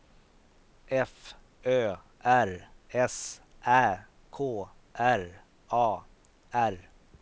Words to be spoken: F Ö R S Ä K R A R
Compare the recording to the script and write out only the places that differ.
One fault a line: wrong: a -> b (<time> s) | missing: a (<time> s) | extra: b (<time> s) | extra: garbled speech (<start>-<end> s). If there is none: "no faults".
no faults